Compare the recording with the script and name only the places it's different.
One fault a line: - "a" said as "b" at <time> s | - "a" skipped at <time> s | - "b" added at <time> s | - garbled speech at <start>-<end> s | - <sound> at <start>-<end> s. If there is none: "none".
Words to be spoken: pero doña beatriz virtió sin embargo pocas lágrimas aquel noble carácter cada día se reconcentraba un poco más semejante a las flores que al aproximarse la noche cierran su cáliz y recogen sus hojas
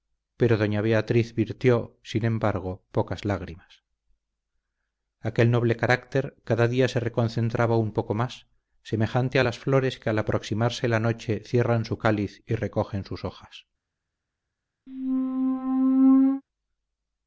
- squeak at 14.9-16.4 s